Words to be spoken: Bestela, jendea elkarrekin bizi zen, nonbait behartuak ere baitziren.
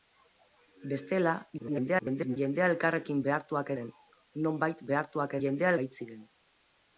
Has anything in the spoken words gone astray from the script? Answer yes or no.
yes